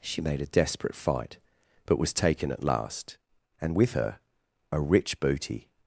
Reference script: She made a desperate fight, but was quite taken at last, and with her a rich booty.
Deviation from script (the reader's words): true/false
true